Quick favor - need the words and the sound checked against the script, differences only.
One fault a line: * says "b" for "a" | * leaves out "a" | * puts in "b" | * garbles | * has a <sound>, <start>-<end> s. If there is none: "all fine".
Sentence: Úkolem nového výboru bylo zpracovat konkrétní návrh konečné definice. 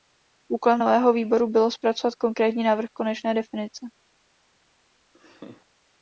* has a laugh, 5.1-5.7 s